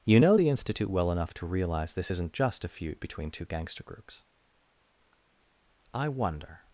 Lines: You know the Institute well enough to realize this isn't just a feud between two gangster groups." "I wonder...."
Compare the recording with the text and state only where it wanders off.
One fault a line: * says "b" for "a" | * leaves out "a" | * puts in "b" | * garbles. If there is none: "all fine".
all fine